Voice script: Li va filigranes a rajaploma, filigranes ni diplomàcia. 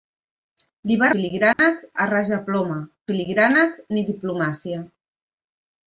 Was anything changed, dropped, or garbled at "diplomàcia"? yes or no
no